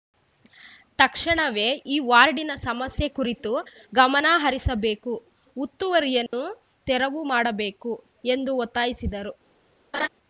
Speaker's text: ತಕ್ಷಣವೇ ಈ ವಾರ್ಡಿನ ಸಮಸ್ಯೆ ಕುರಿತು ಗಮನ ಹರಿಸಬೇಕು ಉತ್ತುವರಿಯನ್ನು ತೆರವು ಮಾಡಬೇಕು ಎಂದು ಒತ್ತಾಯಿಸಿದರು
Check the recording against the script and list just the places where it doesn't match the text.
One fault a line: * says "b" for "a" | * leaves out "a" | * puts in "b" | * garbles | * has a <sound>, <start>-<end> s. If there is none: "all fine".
* has a dropout, 6.3-6.3 s
* has a laugh, 9.9-10.1 s